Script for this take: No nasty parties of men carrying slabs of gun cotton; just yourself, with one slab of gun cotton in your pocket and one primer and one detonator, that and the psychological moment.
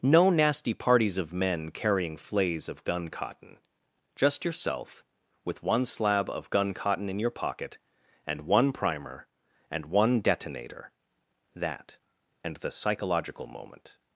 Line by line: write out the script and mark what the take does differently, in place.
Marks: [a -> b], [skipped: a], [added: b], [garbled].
No nasty parties of men carrying [slabs -> flays] of gun cotton; just yourself, with one slab of gun cotton in your pocket and one primer and one detonator, that and the psychological moment.